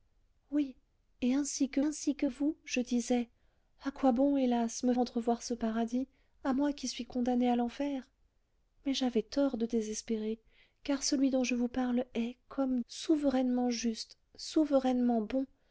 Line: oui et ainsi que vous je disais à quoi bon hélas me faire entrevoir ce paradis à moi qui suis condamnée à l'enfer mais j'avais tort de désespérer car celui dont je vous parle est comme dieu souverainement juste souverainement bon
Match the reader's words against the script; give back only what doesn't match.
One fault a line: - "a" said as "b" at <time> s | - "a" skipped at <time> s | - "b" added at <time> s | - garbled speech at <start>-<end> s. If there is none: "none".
- "ainsi que" added at 1.8 s
- "faire" skipped at 4.9 s
- "dieu" skipped at 12.8 s